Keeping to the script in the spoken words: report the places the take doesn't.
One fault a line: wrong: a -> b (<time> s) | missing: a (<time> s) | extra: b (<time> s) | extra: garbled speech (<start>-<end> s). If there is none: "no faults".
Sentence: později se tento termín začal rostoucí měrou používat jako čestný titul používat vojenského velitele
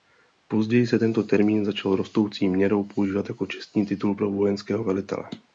wrong: používat -> pro (4.1 s)